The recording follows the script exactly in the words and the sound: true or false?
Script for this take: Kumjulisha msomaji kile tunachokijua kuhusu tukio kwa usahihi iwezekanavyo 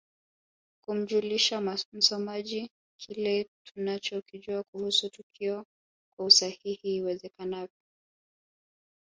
true